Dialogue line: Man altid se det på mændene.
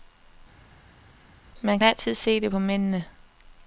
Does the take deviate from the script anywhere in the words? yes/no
no